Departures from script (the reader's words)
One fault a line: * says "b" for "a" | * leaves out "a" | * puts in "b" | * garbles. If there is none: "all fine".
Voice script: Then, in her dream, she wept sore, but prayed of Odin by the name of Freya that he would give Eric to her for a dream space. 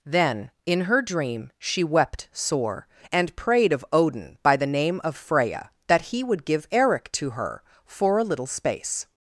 * says "and" for "but"
* says "little" for "dream"